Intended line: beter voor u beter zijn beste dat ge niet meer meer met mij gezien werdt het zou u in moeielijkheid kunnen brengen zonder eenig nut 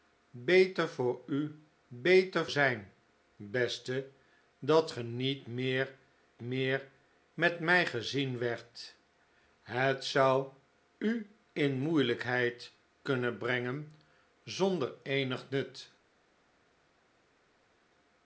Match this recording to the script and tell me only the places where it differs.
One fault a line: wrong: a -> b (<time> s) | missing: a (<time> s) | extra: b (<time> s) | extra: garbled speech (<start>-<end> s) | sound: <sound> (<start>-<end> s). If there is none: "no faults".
no faults